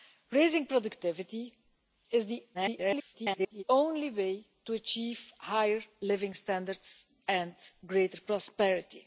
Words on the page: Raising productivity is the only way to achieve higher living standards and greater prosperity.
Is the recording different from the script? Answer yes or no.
yes